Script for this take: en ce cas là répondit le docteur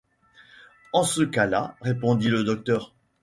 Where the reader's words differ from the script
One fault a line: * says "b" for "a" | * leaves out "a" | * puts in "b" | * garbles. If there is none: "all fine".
all fine